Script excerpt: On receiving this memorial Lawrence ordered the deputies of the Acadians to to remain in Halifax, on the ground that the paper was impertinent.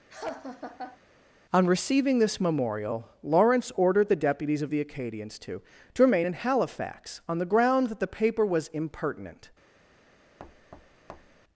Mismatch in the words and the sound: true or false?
true